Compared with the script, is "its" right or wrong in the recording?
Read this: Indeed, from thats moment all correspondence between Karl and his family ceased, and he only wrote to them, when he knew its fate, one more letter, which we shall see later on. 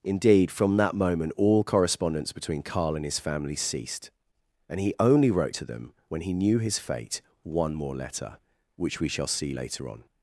wrong